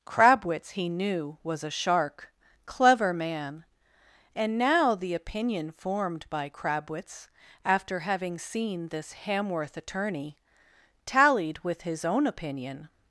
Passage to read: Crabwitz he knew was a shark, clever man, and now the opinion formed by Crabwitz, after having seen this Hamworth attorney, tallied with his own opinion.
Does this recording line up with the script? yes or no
yes